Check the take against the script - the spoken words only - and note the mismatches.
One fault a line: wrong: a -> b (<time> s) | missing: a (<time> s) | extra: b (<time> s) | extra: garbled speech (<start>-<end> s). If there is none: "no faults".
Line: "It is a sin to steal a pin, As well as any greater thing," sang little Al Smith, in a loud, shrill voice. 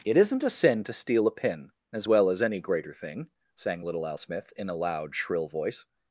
wrong: is -> isn't (0.2 s)